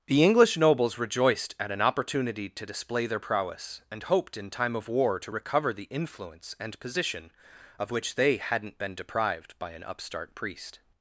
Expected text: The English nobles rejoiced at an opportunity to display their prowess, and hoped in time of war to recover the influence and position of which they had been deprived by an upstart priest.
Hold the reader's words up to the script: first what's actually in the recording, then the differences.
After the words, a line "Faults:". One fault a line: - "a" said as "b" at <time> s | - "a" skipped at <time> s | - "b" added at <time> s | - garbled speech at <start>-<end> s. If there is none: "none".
The English nobles rejoiced at an opportunity to display their prowess, and hoped in time of war to recover the influence and position of which they hadn't been deprived by an upstart priest.
Faults:
- "had" said as "hadn't" at 8.4 s